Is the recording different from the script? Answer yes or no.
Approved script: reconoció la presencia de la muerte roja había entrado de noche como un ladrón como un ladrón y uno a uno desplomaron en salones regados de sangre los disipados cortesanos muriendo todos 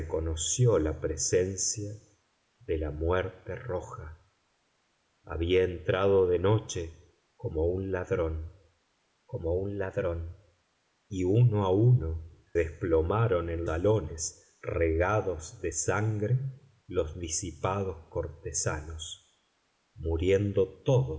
no